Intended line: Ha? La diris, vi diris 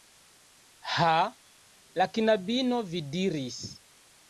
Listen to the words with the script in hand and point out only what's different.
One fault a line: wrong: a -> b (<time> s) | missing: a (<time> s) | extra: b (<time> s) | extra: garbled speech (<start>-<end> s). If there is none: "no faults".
wrong: diris -> knabino (2.2 s)